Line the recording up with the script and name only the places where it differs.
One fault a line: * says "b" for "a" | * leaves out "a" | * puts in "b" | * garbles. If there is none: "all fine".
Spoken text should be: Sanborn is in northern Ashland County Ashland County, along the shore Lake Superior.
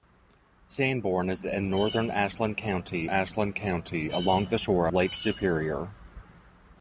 all fine